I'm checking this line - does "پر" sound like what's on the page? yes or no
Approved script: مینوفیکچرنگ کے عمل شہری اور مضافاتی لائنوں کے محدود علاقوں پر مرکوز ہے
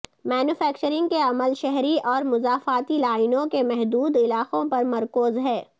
yes